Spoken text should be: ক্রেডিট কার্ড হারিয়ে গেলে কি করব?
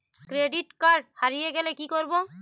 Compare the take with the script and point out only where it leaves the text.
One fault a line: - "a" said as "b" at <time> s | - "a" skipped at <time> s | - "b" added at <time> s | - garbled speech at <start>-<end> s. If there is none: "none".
none